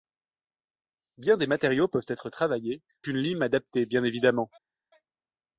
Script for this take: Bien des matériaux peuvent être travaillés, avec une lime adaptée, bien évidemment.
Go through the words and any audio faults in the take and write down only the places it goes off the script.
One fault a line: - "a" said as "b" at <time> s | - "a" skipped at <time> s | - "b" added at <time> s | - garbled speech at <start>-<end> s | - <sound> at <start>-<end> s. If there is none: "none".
- "avec" skipped at 2.8 s